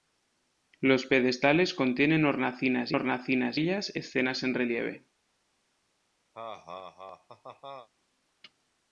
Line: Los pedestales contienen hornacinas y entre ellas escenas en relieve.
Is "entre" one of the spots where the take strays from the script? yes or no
yes